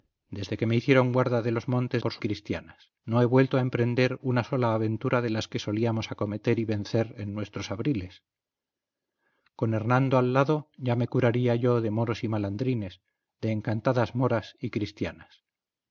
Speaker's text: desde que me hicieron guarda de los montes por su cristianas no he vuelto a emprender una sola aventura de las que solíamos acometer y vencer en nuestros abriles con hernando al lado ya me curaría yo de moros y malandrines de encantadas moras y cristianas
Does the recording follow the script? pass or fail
pass